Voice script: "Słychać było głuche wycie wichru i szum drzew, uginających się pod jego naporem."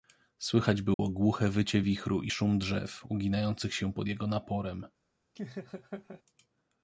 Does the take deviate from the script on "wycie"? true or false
false